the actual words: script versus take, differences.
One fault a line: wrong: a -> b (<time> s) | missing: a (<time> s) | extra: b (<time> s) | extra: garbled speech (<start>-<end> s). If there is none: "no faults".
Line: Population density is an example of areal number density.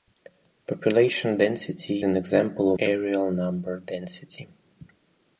missing: is (2.0 s)
missing: of (2.7 s)